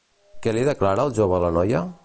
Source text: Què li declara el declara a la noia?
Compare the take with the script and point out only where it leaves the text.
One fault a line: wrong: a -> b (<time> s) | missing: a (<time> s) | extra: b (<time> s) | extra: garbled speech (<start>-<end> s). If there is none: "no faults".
wrong: declara -> jove (1.2 s)